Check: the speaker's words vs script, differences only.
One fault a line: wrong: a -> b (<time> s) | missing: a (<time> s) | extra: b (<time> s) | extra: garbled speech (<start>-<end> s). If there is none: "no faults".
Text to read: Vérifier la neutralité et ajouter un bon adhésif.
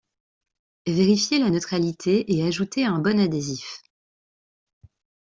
no faults